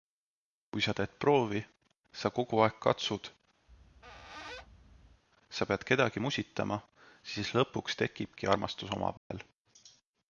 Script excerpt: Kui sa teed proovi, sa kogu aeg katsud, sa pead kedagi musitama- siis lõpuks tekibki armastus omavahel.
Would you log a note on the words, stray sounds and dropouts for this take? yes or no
yes